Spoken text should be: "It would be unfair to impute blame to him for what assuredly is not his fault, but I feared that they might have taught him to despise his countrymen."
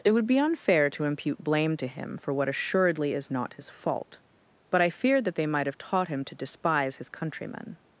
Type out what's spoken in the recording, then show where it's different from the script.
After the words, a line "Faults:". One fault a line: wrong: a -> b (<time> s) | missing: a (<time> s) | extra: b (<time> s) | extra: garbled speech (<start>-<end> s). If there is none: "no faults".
"It would be unfair to impute blame to him for what assuredly is not his fault, but I feared that they might have taught him to despise his countrymen."
Faults:
no faults